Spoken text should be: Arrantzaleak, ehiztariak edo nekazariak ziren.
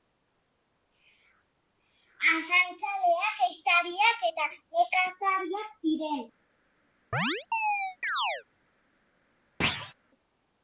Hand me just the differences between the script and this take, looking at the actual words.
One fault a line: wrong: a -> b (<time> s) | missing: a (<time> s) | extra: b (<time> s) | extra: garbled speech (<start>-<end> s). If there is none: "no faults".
wrong: edo -> eta (4.3 s)